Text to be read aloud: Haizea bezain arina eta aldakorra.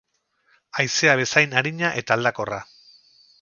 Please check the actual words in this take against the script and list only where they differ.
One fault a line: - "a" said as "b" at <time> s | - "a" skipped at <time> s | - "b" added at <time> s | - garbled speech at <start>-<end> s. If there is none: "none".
none